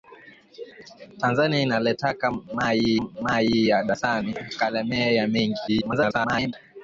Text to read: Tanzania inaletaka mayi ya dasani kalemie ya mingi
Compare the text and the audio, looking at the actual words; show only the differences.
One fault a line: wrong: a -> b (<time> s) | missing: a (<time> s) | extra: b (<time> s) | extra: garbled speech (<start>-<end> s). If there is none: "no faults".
extra: mayi (3.0 s)
extra: garbled speech (5.7-6.5 s)